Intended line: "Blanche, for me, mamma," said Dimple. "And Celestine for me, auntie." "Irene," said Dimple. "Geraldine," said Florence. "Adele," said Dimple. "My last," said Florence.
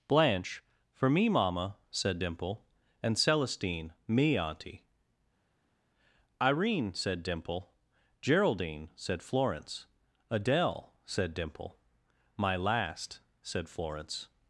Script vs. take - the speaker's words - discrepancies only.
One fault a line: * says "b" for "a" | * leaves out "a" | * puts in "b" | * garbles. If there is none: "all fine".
* leaves out "for"